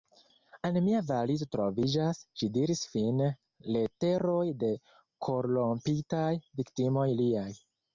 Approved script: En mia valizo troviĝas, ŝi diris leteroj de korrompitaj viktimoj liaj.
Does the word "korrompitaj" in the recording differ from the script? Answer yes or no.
no